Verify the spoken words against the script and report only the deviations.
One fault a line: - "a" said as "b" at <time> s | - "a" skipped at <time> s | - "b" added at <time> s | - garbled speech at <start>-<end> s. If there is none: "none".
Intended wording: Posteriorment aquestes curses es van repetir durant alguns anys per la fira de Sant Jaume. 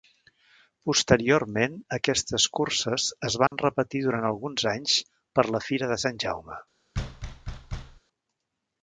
none